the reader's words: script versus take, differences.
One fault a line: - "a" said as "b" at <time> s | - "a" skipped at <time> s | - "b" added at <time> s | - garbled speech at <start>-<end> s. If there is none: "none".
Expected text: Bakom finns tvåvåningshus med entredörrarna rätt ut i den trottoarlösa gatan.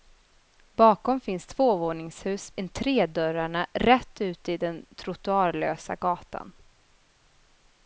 - "med" skipped at 2.5 s